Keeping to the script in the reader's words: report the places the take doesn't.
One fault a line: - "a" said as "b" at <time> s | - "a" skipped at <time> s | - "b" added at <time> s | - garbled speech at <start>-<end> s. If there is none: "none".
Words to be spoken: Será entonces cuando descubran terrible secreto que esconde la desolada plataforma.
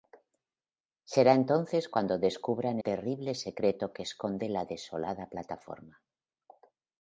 none